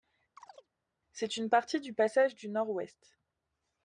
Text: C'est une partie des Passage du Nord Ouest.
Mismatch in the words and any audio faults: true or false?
true